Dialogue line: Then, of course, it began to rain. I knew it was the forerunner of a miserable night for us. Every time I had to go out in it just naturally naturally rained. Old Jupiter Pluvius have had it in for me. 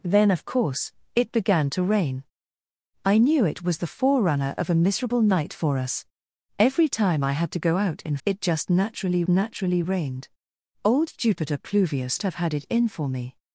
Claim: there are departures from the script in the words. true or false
false